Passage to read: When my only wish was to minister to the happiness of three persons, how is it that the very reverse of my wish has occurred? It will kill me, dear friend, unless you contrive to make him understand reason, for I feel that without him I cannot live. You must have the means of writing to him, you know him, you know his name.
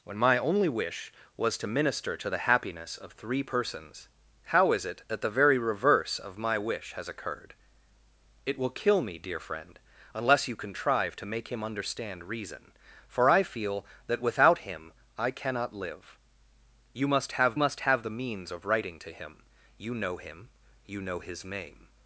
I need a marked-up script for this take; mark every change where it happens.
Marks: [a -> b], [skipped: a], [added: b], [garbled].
When my only wish was to minister to the happiness of three persons, how is it that the very reverse of my wish has occurred? It will kill me, dear friend, unless you contrive to make him understand reason, for I feel that without him I cannot live. You must have [added: must have] the means of writing to him, you know him, you know his name.